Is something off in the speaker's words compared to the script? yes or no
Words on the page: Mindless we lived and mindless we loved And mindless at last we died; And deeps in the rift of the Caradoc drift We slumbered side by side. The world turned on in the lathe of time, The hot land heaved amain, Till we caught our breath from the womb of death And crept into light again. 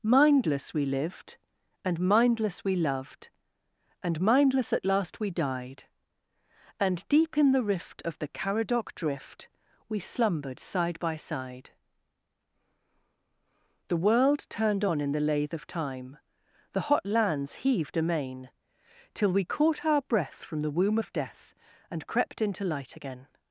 yes